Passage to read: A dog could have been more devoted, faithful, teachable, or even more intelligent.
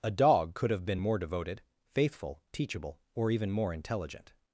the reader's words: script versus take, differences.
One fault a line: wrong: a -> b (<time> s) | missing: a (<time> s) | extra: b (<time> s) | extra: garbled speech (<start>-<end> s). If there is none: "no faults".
no faults